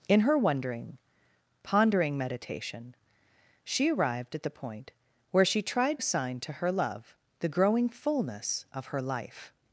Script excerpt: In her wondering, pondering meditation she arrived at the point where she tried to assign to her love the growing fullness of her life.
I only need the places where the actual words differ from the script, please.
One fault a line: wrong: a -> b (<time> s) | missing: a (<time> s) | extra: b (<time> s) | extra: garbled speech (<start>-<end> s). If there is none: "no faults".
missing: to (6.0 s)